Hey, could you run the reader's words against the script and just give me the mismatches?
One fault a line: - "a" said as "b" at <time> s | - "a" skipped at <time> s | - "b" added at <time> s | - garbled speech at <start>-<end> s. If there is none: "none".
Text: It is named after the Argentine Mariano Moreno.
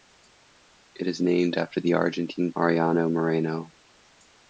none